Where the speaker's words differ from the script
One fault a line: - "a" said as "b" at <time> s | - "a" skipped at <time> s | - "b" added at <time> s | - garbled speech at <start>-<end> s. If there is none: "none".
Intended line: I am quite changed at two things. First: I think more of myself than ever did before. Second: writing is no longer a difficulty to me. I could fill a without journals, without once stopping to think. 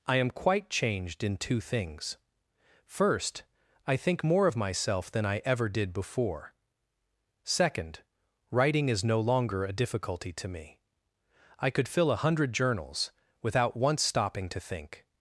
- "at" said as "in" at 1.2 s
- "I" added at 5.2 s
- "without" said as "hundred" at 12.2 s